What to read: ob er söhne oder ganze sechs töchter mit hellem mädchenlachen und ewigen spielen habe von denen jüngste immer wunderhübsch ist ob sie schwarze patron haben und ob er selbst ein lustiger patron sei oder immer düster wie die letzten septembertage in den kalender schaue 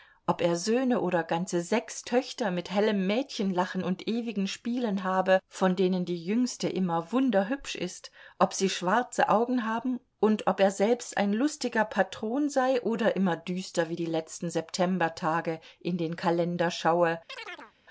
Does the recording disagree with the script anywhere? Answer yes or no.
yes